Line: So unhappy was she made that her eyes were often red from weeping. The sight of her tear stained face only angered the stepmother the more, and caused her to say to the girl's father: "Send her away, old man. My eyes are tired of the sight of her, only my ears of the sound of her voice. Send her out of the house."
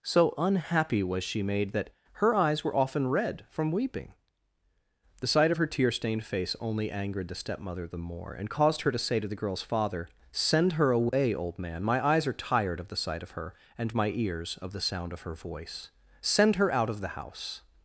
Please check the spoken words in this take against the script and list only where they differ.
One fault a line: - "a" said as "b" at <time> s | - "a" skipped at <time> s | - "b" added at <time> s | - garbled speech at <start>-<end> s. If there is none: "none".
- "only" said as "and" at 13.8 s